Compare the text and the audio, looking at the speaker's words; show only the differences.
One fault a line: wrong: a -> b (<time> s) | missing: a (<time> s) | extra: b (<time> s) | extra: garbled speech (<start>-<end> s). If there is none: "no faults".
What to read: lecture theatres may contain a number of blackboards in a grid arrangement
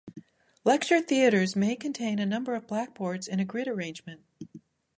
no faults